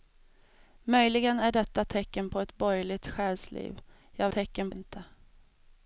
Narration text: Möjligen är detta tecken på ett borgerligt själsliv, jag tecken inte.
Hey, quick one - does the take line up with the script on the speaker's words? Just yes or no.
yes